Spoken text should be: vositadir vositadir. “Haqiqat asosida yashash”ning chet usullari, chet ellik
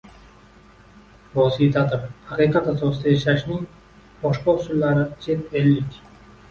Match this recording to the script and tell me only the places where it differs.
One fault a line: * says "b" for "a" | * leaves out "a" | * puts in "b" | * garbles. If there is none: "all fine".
* leaves out "vositadir"
* says "boshqa" for "chet"